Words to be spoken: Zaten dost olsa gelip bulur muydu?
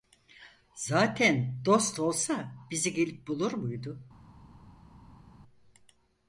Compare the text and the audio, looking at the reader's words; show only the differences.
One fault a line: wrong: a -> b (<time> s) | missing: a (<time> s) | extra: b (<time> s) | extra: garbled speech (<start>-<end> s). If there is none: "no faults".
extra: bizi (2.7 s)